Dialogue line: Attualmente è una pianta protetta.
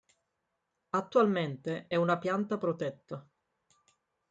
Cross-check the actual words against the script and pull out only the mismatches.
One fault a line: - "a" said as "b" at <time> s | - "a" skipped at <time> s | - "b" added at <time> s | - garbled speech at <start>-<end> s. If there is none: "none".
none